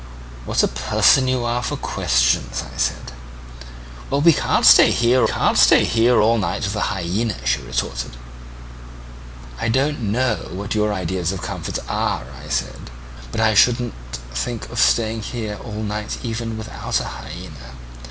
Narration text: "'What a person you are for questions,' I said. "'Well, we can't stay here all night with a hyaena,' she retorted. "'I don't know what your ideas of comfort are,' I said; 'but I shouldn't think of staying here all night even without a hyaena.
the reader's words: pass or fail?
fail